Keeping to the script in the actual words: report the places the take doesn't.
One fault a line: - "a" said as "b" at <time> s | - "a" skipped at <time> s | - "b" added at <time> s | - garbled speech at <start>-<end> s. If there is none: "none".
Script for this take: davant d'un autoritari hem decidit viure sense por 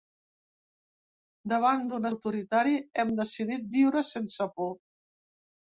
none